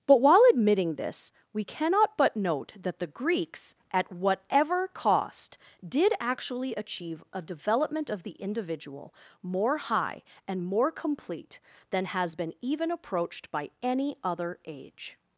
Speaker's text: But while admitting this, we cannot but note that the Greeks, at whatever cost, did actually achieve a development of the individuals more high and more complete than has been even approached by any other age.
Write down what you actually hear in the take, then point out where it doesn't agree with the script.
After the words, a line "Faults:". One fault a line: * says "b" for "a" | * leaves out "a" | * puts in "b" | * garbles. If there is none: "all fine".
But while admitting this, we cannot but note that the Greeks, at whatever cost, did actually achieve a development of the individual more high and more complete than has been even approached by any other age.
Faults:
* says "individual" for "individuals"